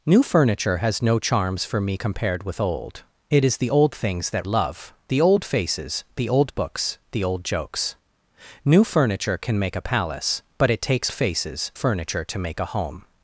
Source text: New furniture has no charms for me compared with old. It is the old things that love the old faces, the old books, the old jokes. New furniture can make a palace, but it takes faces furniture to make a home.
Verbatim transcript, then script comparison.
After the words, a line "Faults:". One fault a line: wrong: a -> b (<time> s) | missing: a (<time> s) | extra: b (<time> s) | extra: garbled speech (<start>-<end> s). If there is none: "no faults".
New furniture has no charms for me compared with old. It is the old things that love the old faces, the old books, the old jokes. New furniture can make a palace, but it takes faces furniture to make a home.
Faults:
no faults